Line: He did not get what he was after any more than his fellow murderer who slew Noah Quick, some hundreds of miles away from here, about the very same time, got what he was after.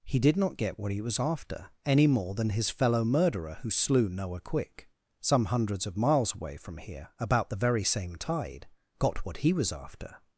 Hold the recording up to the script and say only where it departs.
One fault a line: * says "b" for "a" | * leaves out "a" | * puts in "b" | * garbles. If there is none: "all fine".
* says "tide" for "time"